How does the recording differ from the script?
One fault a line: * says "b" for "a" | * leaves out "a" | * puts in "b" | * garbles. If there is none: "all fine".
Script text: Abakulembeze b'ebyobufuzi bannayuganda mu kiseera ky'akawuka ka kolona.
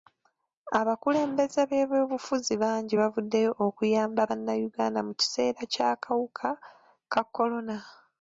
* puts in "bangi bavuddeyo okuyamba"